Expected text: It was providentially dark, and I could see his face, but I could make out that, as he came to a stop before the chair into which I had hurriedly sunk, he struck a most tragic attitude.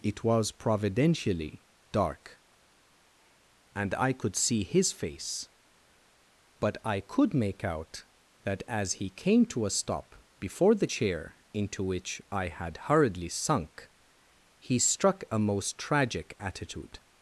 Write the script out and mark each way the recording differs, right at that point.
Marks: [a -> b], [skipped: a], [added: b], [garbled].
It was providentially dark, and I could see his face, but I could make out that, as he came to a stop before the chair into which I had hurriedly sunk, he struck a most tragic attitude.